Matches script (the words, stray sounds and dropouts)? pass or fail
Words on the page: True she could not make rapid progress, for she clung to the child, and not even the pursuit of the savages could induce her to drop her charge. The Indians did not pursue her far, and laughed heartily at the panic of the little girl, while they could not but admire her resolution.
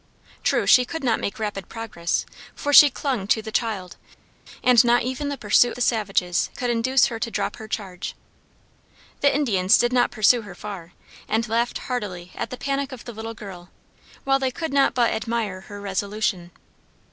fail